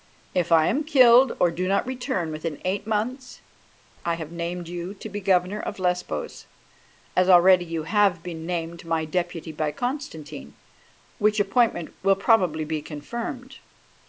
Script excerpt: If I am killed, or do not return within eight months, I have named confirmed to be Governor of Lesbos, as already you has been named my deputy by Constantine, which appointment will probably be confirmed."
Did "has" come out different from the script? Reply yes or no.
yes